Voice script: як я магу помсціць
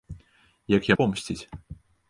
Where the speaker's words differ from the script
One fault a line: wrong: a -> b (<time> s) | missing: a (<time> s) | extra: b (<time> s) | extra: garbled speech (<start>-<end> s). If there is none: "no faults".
missing: магу (0.9 s)